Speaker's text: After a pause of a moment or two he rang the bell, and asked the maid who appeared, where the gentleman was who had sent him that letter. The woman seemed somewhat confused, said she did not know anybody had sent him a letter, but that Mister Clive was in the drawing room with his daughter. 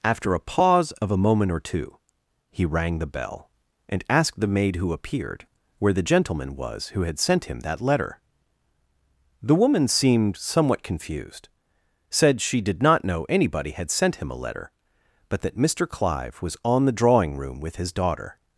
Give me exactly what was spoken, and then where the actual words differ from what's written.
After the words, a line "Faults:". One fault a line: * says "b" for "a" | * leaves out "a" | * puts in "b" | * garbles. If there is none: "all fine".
After a pause of a moment or two he rang the bell, and asked the maid who appeared, where the gentleman was who had sent him that letter. The woman seemed somewhat confused, said she did not know anybody had sent him a letter, but that Mister Clive was on the drawing room with his daughter.
Faults:
* says "on" for "in"